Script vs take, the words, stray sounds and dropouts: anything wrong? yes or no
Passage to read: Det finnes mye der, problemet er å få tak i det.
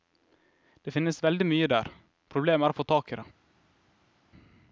yes